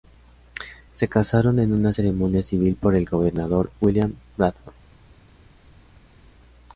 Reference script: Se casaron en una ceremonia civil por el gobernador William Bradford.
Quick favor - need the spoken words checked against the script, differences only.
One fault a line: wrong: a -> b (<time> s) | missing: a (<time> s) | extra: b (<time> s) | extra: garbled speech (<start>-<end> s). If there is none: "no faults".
no faults